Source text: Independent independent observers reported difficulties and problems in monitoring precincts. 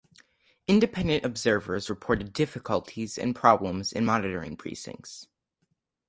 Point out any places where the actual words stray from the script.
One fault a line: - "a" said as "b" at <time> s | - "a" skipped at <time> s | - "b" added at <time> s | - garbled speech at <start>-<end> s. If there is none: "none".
- "independent" skipped at 1.3 s